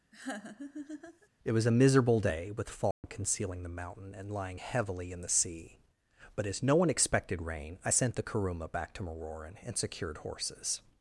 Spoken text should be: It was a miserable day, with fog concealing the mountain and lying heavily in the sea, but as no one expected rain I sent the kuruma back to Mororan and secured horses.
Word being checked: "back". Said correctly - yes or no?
yes